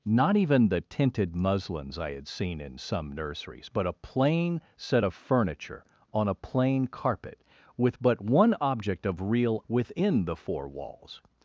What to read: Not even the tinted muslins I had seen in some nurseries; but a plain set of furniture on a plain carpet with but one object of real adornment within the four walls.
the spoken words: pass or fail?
fail